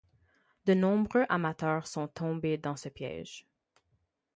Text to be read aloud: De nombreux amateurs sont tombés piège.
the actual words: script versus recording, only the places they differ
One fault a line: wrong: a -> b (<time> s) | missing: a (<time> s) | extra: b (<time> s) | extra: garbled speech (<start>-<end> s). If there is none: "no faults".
extra: dans ce (2.6 s)